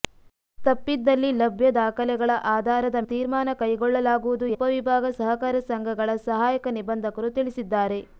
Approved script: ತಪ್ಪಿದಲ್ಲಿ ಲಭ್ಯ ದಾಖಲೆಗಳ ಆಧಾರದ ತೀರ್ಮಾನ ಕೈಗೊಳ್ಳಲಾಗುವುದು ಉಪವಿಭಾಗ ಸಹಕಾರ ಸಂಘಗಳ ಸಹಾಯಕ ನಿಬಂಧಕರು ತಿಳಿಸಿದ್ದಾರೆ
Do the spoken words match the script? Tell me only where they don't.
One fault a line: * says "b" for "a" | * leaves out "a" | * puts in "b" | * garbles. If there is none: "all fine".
all fine